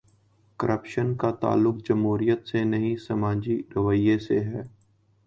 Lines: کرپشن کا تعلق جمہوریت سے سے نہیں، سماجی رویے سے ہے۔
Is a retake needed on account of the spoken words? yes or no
yes